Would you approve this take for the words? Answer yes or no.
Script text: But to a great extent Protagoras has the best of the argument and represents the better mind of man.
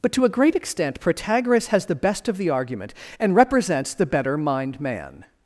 no